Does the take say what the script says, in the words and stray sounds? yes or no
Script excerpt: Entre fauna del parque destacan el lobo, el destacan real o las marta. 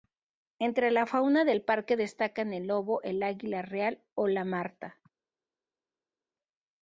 no